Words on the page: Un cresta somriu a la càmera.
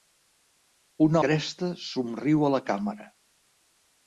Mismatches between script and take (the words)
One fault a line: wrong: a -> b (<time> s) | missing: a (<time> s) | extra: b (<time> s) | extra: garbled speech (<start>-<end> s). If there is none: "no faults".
no faults